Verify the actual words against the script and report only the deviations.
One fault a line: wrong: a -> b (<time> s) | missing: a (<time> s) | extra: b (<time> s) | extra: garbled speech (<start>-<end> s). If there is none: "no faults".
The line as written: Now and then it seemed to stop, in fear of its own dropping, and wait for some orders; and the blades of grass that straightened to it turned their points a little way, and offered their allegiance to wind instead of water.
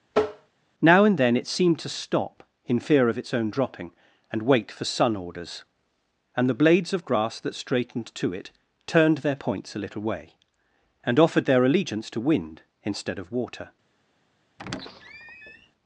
wrong: some -> sun (4.8 s)